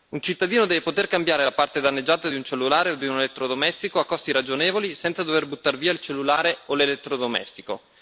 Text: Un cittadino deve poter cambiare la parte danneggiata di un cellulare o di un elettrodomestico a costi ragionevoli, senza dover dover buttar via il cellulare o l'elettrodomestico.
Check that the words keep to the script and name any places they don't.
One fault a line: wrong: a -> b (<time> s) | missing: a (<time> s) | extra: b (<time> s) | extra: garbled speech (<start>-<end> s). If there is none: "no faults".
missing: dover (5.5 s)